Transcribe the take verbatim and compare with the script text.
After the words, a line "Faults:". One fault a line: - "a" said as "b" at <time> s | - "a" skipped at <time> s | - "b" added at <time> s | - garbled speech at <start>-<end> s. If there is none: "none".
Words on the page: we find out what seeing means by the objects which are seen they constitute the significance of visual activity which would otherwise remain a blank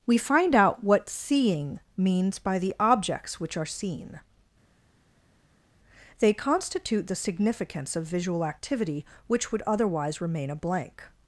we find out what seeing means by the objects which are seen they constitute the significance of visual activity which would otherwise remain a blank
Faults:
none